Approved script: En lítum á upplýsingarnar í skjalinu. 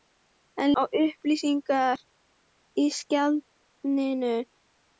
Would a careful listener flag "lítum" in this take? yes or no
yes